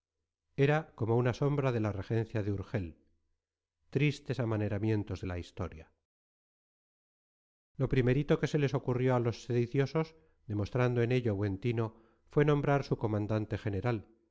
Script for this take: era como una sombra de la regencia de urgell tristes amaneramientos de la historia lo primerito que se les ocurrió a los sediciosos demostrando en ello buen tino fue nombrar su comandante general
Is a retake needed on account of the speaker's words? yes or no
no